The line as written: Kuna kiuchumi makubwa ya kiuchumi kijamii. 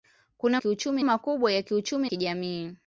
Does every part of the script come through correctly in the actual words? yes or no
yes